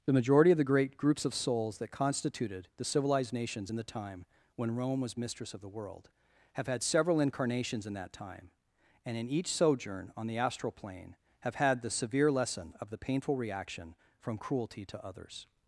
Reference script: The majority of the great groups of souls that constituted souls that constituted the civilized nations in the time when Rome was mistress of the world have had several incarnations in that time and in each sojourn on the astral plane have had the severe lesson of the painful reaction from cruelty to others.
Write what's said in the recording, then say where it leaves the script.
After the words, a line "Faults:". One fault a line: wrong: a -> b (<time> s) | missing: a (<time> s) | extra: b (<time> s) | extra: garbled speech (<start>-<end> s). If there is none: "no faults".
The majority of the great groups of souls that constituted the civilized nations in the time when Rome was mistress of the world have had several incarnations in that time and in each sojourn on the astral plane have had the severe lesson of the painful reaction from cruelty to others.
Faults:
missing: souls that constituted (2.7 s)